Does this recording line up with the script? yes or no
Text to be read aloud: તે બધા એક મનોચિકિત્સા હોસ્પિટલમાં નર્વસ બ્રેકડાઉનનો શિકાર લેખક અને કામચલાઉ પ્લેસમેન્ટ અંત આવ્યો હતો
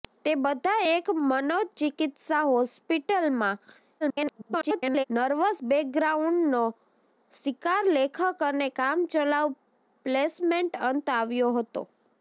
no